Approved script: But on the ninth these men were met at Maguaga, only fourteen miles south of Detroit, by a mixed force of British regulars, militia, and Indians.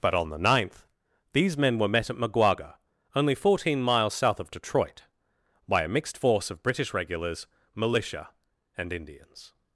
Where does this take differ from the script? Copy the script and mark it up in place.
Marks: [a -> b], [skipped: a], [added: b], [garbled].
But on the ninth these men were met at Maguaga, only fourteen miles south of Detroit, by a mixed force of British regulars, militia, and Indians.